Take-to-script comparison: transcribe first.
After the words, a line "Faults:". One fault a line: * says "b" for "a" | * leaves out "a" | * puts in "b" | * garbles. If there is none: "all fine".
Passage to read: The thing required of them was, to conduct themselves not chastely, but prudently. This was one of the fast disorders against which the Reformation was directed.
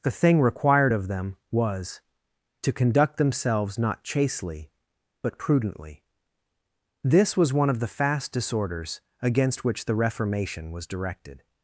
The thing required of them was, to conduct themselves not chastely, but prudently. This was one of the fast disorders against which the Reformation was directed.
Faults:
all fine